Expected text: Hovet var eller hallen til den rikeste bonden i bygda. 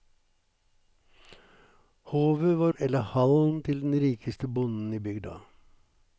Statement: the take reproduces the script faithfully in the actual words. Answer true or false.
true